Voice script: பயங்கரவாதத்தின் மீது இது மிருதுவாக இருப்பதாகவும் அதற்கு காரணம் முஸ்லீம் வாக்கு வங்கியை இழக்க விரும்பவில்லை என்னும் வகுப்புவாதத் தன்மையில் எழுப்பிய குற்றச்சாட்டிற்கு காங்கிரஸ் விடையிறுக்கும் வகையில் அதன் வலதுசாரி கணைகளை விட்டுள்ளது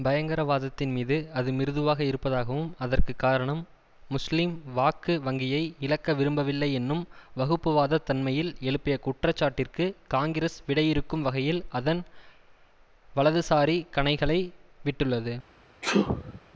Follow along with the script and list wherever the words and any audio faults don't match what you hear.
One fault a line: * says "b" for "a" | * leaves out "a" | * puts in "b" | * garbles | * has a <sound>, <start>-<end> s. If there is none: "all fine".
* says "அது" for "இது"
* has a sneeze, 15.8-16.4 s